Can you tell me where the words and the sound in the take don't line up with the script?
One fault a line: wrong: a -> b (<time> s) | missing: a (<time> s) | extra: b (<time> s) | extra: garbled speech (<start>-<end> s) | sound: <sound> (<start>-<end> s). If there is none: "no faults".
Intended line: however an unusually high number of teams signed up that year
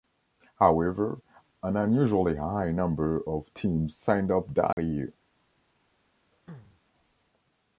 sound: dropout (4.7-4.8 s)
sound: throat clearing (6.3-6.8 s)